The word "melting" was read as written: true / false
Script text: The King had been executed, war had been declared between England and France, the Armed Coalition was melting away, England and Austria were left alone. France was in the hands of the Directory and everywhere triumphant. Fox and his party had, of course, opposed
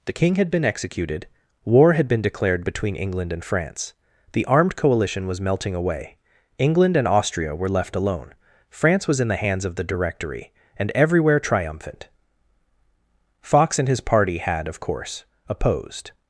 true